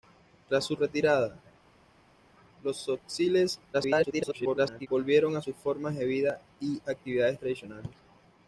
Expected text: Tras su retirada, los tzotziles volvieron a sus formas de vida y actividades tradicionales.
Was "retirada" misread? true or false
false